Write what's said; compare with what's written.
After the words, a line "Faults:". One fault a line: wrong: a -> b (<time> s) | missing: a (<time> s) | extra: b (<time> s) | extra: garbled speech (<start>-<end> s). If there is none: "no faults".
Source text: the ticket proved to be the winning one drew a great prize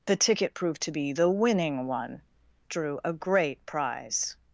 the ticket proved to be the winning one drew a great prize
Faults:
no faults